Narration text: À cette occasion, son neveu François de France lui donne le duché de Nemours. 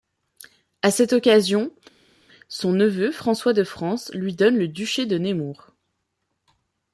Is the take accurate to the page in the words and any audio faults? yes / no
yes